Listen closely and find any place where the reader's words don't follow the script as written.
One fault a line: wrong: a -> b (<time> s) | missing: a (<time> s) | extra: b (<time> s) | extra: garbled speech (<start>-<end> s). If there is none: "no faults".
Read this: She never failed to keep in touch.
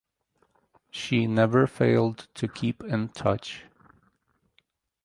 no faults